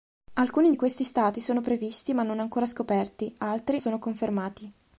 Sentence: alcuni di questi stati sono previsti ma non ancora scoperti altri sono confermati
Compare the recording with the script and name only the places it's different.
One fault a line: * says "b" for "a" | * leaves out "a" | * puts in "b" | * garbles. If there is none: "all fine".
all fine